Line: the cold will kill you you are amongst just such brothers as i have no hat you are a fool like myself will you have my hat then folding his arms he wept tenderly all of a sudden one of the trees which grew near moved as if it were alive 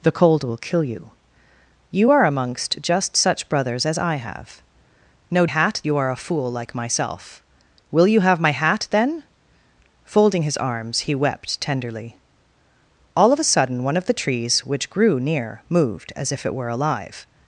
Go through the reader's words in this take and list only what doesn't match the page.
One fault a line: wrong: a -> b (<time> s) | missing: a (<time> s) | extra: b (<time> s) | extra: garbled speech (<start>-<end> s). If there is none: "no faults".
no faults